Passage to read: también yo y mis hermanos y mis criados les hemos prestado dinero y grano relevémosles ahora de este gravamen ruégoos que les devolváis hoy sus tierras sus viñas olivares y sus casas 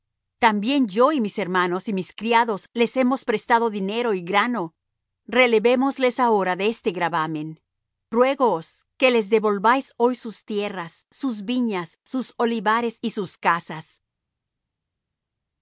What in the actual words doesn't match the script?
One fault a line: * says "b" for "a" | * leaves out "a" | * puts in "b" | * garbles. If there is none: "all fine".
* puts in "sus"